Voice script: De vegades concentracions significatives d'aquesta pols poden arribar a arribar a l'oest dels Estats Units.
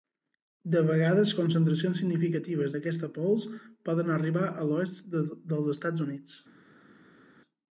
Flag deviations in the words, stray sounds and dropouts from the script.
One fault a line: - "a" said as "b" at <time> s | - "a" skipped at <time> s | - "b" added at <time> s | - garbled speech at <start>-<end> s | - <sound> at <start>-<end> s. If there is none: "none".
- "arribar a" skipped at 4.7 s